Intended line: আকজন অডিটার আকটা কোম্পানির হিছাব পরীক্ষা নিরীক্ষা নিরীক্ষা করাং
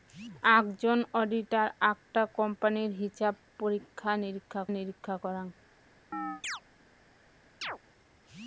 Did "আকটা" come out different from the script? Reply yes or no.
no